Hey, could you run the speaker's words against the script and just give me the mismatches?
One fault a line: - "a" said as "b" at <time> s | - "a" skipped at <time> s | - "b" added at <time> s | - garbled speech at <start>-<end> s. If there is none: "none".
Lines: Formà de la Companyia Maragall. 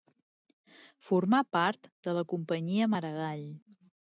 - "part" added at 1.6 s